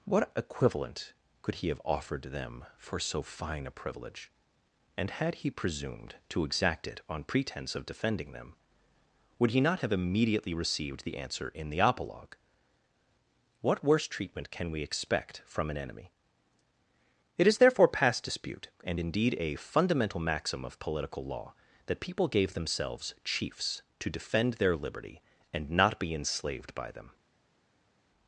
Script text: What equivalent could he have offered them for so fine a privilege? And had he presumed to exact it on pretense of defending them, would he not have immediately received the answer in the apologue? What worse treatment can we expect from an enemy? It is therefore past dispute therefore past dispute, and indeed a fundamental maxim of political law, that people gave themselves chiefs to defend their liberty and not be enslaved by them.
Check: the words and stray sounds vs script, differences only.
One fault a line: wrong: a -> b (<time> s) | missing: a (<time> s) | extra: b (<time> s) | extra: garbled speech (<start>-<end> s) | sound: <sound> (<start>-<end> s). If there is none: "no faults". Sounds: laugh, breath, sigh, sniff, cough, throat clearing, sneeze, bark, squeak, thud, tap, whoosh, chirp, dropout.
missing: therefore past dispute (18.7 s)